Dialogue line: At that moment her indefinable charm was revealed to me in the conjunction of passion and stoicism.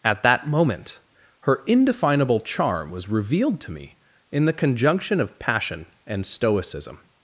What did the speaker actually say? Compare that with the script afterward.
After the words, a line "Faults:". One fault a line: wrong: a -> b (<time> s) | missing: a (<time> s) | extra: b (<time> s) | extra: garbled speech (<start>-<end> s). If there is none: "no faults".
At that moment her indefinable charm was revealed to me in the conjunction of passion and stoicism.
Faults:
no faults